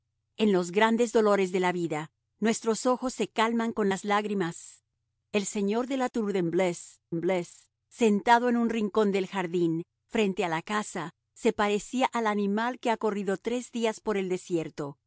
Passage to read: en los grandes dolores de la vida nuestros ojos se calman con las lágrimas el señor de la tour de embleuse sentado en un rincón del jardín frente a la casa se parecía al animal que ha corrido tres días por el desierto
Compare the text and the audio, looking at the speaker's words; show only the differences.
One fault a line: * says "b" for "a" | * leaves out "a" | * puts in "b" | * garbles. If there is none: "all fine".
* puts in "embleuse"